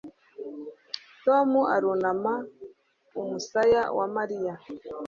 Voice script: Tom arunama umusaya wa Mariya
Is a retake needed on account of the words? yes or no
no